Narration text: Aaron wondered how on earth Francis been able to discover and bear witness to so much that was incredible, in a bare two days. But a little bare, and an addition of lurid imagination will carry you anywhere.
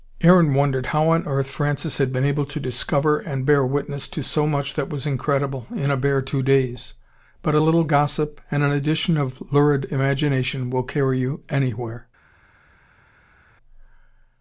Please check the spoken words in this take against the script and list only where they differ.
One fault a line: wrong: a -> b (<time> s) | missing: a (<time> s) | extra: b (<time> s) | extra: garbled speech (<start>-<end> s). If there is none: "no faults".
extra: had (2.0 s)
wrong: bare -> gossip (7.8 s)